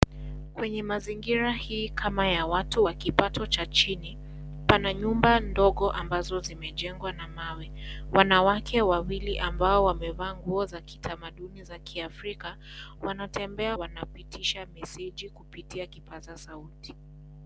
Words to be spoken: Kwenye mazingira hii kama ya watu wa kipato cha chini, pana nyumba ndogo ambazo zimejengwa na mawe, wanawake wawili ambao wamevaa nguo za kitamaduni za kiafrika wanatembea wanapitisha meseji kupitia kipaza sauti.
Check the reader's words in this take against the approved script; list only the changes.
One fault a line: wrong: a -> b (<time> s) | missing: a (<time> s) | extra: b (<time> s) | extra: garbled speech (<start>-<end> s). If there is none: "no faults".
no faults